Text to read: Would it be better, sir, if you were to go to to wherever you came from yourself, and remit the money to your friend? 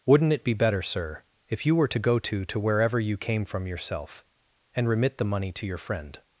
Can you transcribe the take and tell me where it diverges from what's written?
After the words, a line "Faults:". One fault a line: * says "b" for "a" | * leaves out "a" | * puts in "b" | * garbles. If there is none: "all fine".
Wouldn't it be better, sir, if you were to go to to wherever you came from yourself, and remit the money to your friend?
Faults:
* says "Wouldn't" for "Would"